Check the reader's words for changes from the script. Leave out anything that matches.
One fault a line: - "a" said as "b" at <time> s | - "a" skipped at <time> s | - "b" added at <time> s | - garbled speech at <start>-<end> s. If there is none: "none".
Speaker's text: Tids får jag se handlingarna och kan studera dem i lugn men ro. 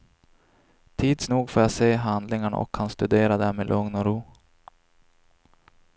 - "nog" added at 1.3 s
- "men" said as "och" at 3.9 s